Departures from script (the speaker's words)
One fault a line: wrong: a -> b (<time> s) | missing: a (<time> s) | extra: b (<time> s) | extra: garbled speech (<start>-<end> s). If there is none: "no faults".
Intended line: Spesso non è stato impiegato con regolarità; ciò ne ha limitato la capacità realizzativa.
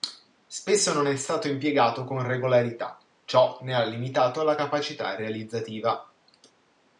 no faults